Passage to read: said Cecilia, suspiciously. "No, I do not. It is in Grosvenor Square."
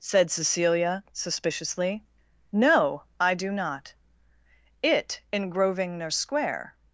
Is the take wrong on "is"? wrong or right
wrong